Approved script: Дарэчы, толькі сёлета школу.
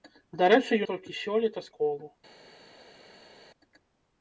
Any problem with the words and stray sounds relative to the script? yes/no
no